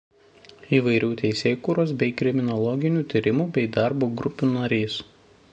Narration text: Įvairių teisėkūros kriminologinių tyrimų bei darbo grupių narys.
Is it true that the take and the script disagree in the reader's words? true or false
true